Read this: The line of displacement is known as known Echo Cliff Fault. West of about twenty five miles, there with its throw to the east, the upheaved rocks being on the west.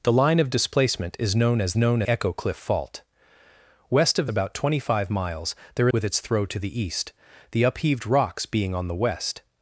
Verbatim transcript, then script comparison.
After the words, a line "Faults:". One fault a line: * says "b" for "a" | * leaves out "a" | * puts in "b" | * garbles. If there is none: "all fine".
The line of displacement is known as known Echo Cliff Fault. West of about twenty five miles, there with its throw to the east, the upheaved rocks being on the west.
Faults:
all fine